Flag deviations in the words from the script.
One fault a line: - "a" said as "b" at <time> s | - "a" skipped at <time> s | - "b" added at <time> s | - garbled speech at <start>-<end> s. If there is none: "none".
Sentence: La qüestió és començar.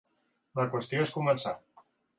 none